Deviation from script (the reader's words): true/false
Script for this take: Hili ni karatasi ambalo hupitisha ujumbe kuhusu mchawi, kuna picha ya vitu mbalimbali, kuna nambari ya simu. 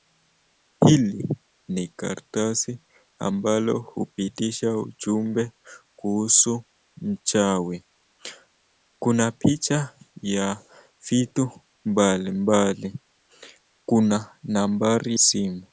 true